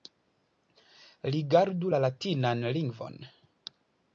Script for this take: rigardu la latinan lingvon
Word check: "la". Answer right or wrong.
right